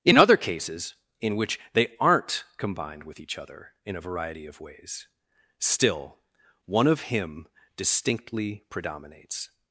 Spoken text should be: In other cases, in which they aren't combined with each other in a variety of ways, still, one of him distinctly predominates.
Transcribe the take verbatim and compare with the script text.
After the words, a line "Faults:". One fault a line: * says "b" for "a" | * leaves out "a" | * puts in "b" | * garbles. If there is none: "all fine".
In other cases, in which they aren't combined with each other in a variety of ways, still, one of him distinctly predominates.
Faults:
all fine